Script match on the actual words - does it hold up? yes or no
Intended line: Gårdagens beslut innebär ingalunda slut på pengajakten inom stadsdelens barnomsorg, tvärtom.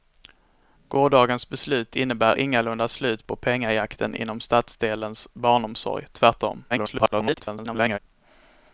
no